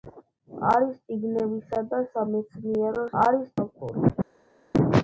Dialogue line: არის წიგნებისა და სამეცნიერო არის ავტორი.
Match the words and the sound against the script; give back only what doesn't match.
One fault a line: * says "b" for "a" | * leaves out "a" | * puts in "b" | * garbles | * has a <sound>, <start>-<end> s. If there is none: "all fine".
all fine